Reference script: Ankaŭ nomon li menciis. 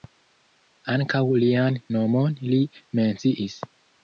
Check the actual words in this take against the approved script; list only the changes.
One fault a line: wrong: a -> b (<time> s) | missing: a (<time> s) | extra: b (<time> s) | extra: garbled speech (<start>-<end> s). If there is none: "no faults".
extra: lian (1.4 s)